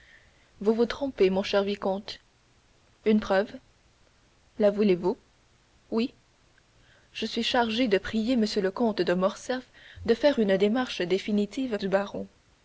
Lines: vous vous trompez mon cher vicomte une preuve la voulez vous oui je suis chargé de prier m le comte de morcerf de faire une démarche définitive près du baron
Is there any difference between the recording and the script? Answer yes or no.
yes